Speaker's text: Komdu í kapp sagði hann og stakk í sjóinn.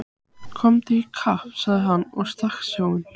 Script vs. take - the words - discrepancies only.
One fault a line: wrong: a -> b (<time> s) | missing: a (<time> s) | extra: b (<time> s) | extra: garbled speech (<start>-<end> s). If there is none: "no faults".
no faults